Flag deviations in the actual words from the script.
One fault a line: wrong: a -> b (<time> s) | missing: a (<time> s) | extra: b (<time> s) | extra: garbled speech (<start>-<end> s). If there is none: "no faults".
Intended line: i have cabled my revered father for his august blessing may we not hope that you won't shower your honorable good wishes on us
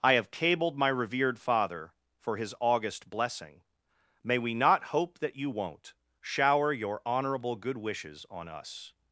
no faults